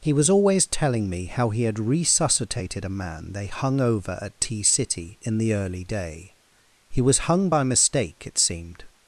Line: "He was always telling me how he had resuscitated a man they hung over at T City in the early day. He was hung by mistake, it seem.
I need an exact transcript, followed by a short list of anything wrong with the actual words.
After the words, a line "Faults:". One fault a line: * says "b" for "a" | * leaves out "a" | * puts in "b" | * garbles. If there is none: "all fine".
"He was always telling me how he had resuscitated a man they hung over at T City in the early day. He was hung by mistake, it seemed.
Faults:
* says "seemed" for "seem"